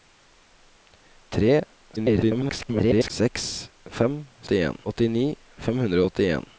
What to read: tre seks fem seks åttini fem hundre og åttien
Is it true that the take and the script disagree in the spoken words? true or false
true